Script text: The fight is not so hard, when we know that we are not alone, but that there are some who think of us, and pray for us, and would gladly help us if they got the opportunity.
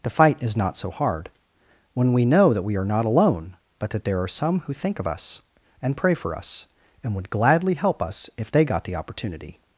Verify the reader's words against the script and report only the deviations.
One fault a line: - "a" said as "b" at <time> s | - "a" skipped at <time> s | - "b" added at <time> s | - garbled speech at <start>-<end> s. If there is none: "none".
none